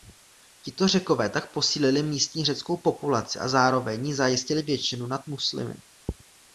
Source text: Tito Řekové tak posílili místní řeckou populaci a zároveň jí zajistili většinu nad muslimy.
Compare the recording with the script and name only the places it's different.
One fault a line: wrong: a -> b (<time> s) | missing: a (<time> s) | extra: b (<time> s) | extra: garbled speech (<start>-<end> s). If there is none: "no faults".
no faults